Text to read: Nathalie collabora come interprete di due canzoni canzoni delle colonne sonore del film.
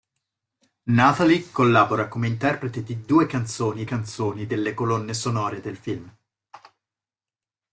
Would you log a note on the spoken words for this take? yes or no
no